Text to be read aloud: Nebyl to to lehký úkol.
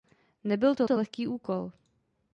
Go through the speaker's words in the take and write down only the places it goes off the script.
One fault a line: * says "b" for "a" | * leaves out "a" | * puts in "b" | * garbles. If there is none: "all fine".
all fine